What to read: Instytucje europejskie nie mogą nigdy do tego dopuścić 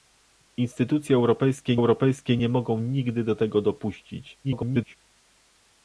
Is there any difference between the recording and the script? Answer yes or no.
yes